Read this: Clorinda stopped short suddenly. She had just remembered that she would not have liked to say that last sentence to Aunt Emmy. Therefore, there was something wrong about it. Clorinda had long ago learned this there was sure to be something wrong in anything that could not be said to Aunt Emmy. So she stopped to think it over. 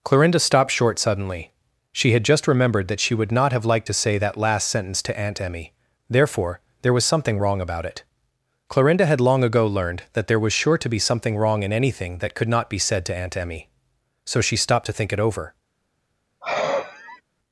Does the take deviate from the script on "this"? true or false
true